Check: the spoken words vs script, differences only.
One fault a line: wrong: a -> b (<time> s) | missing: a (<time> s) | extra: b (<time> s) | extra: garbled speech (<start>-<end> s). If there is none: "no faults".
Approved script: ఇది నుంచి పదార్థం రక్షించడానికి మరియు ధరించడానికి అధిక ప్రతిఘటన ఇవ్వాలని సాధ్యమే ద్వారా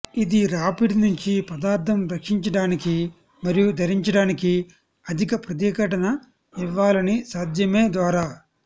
extra: రాపిడి (0.5 s)